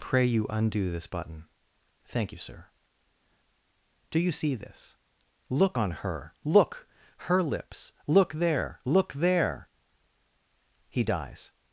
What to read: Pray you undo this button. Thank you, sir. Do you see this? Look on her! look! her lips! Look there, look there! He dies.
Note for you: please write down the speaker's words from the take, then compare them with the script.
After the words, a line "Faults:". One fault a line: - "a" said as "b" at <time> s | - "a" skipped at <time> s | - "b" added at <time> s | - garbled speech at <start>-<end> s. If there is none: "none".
Pray you undo this button. Thank you, sir. Do you see this? Look on her! look! her lips! Look there, look there! He dies.
Faults:
none